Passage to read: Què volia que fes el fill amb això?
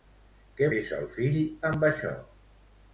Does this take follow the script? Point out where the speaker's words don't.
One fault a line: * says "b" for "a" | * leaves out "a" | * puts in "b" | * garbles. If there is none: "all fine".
* leaves out "volia que"